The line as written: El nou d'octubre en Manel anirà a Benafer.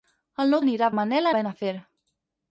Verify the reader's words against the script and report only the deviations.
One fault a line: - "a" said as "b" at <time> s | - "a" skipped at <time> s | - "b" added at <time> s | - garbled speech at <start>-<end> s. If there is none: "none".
- "d'octubre" said as "anirà" at 0.6 s
- "anirà" skipped at 1.3 s